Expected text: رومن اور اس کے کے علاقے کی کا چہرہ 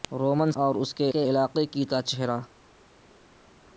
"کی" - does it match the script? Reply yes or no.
yes